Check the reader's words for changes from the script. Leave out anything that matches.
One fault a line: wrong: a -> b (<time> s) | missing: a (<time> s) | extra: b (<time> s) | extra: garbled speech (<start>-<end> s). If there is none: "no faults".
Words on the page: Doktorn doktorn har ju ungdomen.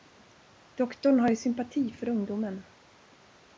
missing: doktorn (1.2 s)
extra: sympati för (1.4 s)